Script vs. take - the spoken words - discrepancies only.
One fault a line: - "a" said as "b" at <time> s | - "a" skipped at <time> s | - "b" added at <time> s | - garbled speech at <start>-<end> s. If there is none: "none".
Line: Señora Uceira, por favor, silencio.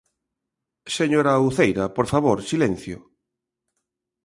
none